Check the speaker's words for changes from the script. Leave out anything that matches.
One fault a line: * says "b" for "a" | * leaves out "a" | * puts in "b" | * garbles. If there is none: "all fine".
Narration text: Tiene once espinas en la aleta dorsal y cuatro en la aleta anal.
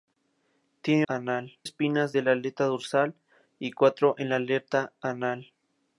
* says "anal" for "once"